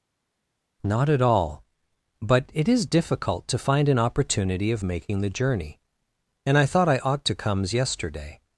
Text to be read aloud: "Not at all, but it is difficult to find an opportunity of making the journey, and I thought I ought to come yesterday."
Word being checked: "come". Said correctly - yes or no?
no